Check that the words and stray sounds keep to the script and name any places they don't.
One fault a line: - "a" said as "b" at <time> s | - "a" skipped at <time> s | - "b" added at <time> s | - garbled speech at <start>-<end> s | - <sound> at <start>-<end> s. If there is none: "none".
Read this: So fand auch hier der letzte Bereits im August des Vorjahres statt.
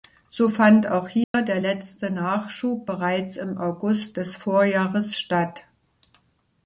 - dropout at 1.2-1.3 s
- "Nachschub" added at 2.1 s